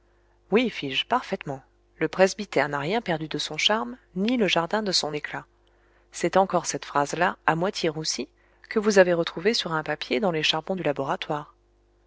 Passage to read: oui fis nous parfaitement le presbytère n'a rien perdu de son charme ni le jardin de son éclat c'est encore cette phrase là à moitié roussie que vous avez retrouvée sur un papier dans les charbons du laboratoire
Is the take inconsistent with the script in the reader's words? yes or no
yes